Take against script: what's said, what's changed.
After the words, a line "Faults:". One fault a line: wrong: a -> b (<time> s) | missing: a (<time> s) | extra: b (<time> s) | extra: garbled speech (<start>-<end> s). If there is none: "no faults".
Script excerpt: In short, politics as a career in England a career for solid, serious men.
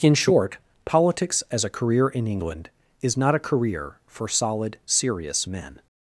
In short, politics as a career in England is not a career for solid, serious men.
Faults:
extra: is not (3.0 s)